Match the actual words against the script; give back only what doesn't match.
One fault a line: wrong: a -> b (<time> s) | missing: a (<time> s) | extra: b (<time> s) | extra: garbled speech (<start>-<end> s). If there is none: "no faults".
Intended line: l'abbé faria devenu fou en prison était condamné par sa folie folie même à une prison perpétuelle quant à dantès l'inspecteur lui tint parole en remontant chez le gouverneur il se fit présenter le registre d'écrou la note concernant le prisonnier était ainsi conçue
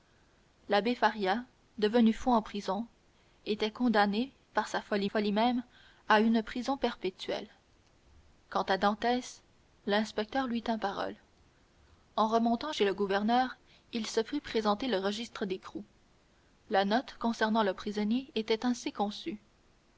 no faults